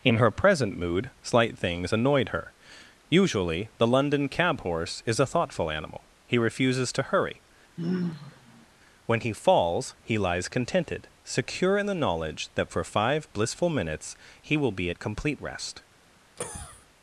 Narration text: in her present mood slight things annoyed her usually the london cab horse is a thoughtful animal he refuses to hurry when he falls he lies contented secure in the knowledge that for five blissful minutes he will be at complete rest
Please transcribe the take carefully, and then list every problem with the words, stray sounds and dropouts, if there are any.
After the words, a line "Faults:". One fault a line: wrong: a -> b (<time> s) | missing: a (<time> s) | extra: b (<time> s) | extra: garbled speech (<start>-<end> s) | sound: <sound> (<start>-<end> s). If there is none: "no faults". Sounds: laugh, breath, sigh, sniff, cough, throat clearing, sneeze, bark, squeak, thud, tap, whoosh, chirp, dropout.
in her present mood slight things annoyed her usually the london cab horse is a thoughtful animal he refuses to hurry when he falls he lies contented secure in the knowledge that for five blissful minutes he will be at complete rest
Faults:
sound: sigh (7.8-8.7 s)
sound: cough (16.4-16.9 s)